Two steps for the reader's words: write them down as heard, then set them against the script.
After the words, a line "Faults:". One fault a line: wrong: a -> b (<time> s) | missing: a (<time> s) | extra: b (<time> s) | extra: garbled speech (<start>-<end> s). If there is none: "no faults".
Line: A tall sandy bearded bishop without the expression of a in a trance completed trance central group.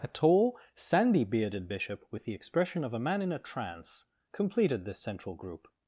A tall sandy bearded bishop with the expression of a man in a trance completed this central group.
Faults:
wrong: without -> with (2.1 s)
extra: man (3.0 s)
wrong: trance -> this (4.8 s)